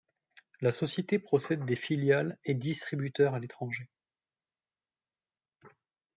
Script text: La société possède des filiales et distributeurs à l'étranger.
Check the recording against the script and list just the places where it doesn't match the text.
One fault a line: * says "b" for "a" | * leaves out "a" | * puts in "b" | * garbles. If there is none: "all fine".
all fine